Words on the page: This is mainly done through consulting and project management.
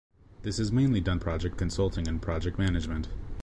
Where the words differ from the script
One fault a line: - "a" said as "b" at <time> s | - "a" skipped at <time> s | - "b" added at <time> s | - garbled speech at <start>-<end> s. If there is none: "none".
- "through" said as "project" at 1.2 s